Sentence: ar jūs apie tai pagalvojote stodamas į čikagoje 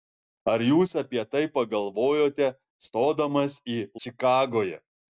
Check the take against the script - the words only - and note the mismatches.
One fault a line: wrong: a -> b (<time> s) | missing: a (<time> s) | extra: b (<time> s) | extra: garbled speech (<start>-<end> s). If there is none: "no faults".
no faults